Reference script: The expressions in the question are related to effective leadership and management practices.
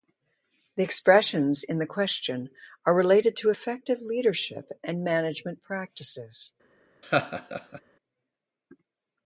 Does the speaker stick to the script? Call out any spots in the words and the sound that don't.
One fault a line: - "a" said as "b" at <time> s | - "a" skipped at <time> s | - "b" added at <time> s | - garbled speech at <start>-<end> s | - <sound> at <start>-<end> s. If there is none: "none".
- laugh at 7.0-7.8 s